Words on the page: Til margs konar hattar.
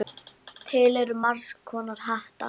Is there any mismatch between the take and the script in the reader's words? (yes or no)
yes